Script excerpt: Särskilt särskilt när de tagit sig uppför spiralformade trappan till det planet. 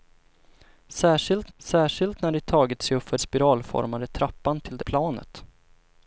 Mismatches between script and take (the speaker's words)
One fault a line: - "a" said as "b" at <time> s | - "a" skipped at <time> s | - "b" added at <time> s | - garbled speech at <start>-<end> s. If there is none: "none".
none